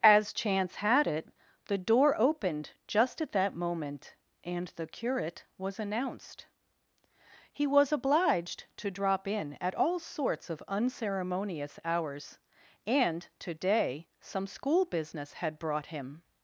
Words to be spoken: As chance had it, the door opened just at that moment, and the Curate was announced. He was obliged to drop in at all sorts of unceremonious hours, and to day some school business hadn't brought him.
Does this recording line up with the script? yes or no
no